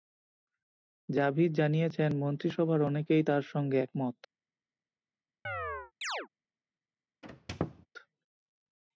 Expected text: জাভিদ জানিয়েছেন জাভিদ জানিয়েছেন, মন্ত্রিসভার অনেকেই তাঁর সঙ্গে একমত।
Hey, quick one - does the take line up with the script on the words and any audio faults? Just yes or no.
no